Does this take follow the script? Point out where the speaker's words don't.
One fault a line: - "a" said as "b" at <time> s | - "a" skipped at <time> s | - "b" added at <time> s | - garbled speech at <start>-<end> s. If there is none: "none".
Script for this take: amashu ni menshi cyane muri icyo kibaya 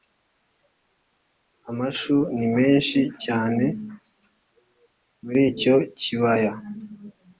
none